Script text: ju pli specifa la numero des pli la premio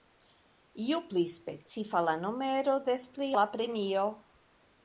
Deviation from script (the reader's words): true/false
false